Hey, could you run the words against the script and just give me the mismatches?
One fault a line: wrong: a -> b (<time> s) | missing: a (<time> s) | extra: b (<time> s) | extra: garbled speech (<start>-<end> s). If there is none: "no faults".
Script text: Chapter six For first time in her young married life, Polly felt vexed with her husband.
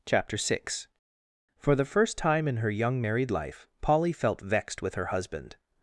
extra: the (1.8 s)